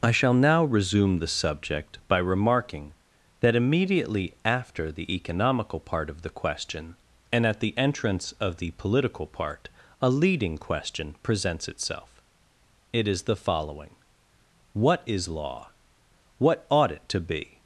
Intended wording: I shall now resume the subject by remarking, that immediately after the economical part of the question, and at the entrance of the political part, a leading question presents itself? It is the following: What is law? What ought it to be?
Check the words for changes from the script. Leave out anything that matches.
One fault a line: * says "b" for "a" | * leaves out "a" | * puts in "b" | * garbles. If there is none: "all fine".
all fine